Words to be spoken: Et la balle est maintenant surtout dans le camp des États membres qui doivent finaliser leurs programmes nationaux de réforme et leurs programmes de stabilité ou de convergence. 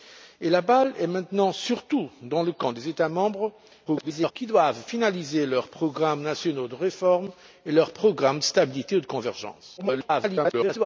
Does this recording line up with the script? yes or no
no